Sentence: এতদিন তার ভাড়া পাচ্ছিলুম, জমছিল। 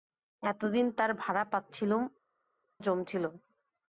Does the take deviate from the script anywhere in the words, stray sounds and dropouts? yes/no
no